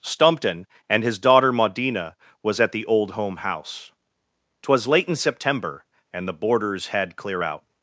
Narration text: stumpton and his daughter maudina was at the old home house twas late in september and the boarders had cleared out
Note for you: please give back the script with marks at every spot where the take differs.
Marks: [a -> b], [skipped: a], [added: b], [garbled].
stumpton and his daughter maudina was at the old home house twas late in september and the boarders had [cleared -> clear] out